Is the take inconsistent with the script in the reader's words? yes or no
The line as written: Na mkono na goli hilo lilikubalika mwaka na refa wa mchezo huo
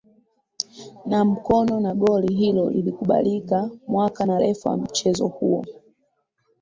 no